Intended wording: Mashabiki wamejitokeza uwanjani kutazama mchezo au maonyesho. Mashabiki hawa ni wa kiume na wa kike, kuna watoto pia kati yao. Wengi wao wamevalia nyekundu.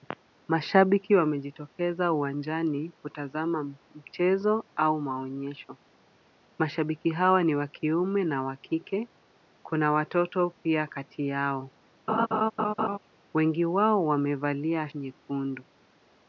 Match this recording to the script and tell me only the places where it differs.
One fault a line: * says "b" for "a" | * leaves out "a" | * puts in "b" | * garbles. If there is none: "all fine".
all fine